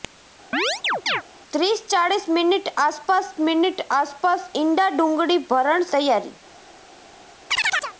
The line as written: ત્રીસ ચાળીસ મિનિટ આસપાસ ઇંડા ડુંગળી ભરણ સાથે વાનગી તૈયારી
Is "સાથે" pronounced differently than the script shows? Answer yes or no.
yes